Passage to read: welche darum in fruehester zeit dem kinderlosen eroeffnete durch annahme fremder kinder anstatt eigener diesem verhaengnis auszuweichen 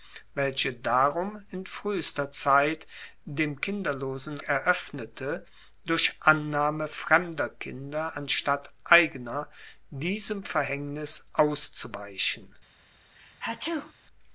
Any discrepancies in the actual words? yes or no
no